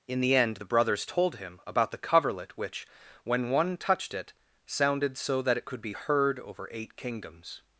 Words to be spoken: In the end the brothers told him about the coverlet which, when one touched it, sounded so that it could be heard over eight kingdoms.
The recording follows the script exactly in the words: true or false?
true